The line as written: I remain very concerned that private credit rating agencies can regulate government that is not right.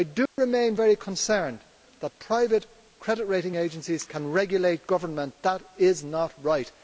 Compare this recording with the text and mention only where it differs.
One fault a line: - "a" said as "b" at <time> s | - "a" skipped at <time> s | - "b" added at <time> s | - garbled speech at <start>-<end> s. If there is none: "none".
none